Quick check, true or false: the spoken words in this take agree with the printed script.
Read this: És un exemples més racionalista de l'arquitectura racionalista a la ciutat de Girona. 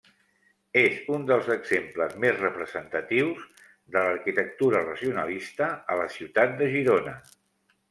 false